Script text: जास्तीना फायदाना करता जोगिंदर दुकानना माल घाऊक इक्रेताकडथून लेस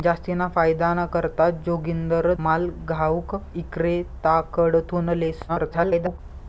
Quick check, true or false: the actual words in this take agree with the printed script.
false